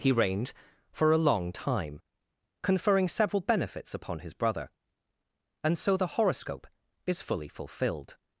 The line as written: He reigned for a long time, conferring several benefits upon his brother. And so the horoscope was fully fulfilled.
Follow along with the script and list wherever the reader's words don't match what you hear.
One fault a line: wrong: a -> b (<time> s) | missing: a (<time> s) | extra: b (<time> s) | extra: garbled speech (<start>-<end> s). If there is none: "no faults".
wrong: was -> is (7.0 s)